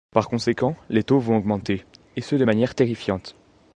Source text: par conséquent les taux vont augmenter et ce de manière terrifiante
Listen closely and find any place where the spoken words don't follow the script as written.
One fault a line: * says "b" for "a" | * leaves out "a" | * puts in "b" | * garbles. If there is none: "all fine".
all fine